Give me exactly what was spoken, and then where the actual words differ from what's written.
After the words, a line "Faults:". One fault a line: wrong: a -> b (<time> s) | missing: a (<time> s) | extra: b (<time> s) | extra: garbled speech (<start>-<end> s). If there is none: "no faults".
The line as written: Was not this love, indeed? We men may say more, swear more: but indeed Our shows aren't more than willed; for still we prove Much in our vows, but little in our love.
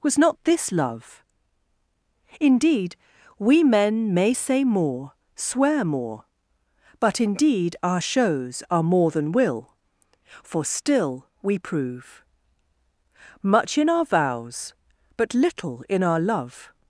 Was not this love, indeed? We men may say more, swear more: but indeed Our shows are more than will; for still we prove Much in our vows, but little in our love.
Faults:
wrong: aren't -> are (8.7 s)
wrong: willed -> will (9.3 s)